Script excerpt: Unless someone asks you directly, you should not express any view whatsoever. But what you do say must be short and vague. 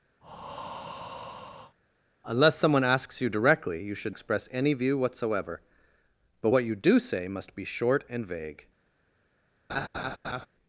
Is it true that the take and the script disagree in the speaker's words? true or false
true